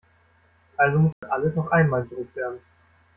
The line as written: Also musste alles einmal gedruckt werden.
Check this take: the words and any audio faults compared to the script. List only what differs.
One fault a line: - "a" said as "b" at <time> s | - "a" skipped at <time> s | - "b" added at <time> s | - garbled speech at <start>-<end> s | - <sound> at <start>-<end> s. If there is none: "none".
- dropout at 1.1-1.2 s
- "noch" added at 1.6 s